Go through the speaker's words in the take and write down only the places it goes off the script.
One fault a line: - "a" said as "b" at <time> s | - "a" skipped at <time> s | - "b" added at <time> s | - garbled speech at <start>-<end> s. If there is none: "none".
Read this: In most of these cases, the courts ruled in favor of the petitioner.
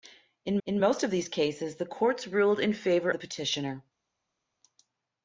- "in" added at 0.7 s
- "of" skipped at 3.1 s